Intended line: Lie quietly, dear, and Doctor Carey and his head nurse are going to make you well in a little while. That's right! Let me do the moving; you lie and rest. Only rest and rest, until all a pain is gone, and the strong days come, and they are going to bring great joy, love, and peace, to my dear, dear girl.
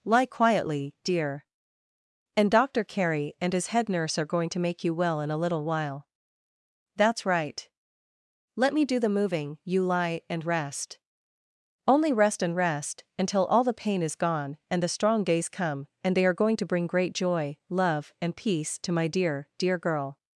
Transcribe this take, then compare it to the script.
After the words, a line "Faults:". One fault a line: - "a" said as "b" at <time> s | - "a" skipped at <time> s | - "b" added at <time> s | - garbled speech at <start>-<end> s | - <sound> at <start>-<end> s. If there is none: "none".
Lie quietly, dear, and Doctor Carey and his head nurse are going to make you well in a little while. That's right! Let me do the moving; you lie and rest. Only rest and rest, until all the pain is gone, and the strong days come, and they are going to bring great joy, love, and peace, to my dear, dear girl.
Faults:
- "a" said as "the" at 13.6 s